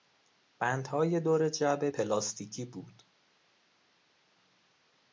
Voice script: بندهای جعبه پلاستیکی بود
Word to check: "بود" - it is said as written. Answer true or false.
true